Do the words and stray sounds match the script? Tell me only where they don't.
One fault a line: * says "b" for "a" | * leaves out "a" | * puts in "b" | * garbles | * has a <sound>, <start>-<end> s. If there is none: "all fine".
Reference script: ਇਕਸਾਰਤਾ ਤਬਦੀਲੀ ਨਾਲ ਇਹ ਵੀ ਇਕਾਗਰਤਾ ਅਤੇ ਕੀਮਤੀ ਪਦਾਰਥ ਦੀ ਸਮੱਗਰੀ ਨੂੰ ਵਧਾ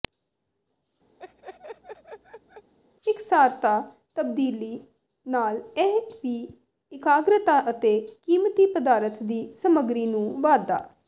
* has a laugh, 1.2-2.7 s